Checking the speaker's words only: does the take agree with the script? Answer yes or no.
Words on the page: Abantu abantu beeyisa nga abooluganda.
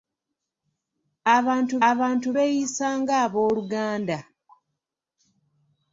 yes